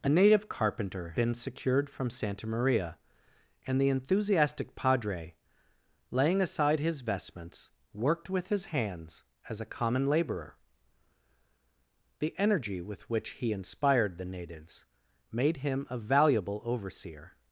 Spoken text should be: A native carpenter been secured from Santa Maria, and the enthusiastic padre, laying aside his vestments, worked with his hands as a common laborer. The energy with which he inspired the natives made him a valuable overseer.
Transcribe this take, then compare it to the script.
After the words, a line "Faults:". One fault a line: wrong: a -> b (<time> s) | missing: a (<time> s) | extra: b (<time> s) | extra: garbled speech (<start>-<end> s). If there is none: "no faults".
A native carpenter been secured from Santa Maria, and the enthusiastic padre, laying aside his vestments, worked with his hands as a common laborer. The energy with which he inspired the natives made him a valuable overseer.
Faults:
no faults